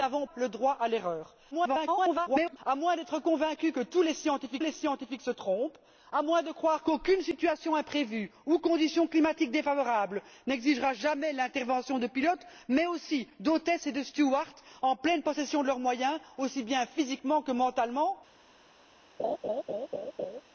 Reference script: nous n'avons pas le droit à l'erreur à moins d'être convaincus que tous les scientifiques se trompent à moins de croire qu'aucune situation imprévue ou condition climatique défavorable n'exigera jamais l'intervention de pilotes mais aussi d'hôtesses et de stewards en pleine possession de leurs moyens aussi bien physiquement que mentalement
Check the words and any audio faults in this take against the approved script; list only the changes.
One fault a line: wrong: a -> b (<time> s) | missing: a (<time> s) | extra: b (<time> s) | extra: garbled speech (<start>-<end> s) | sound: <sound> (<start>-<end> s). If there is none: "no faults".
missing: pas (0.2 s)
extra: garbled speech (1.5-2.6 s)
extra: les scientifiques (4.6 s)
sound: laugh (19.2-20.4 s)